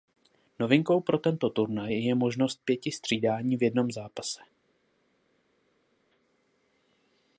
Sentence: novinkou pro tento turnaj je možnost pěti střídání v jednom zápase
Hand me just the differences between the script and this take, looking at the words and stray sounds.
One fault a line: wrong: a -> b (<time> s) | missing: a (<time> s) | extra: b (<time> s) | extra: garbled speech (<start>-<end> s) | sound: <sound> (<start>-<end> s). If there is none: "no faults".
no faults